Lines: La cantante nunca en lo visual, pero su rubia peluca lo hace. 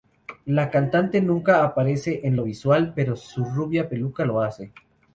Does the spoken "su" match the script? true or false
true